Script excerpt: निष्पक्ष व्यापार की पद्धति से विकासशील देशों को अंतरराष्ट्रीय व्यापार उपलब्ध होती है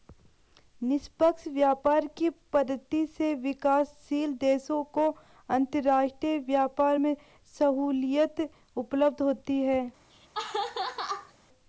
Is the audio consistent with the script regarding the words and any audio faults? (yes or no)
no